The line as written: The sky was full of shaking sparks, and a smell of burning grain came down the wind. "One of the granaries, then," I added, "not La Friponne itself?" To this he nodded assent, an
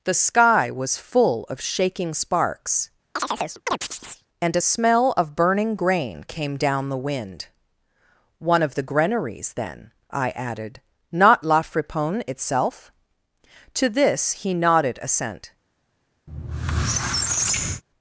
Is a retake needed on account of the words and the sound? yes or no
yes